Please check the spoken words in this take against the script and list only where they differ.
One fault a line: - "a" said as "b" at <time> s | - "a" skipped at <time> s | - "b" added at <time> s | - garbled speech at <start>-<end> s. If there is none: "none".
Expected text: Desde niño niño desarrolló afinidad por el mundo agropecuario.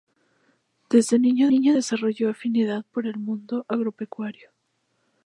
none